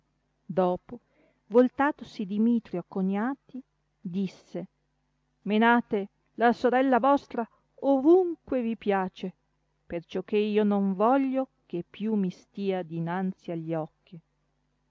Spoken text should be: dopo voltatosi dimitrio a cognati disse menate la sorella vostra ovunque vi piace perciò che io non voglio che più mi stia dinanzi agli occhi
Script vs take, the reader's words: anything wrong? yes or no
no